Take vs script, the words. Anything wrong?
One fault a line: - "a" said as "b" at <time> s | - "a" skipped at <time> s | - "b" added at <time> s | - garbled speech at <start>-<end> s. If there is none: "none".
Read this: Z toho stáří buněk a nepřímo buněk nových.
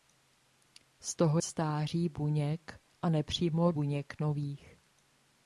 none